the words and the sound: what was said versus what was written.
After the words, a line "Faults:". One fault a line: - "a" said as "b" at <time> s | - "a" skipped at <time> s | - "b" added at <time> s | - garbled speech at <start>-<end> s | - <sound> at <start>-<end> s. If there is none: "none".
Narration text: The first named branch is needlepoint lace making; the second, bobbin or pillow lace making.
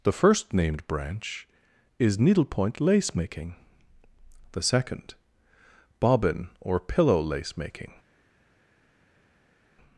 The first named branch is needlepoint lace making; the second, bobbin or pillow lace making.
Faults:
none